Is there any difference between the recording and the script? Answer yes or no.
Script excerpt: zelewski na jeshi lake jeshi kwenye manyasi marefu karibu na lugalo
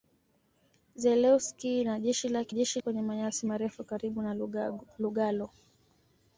no